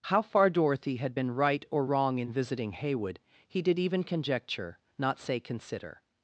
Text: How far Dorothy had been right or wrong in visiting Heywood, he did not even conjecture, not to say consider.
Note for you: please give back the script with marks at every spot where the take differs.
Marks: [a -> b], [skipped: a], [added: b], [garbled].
How far Dorothy had been right or wrong in visiting Heywood, he did [skipped: not] even conjecture, not [skipped: to] say consider.